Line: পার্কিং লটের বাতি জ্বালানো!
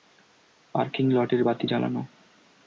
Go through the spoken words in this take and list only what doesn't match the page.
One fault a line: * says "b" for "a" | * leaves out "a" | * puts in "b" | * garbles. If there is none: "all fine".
all fine